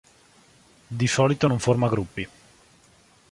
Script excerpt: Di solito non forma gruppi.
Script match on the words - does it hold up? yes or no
yes